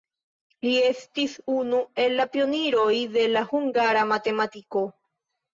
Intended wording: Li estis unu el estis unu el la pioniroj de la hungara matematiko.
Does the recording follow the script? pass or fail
fail